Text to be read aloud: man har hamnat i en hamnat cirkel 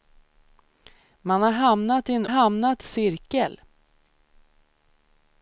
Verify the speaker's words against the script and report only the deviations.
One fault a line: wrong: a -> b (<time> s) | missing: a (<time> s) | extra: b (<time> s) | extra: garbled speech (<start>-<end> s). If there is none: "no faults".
no faults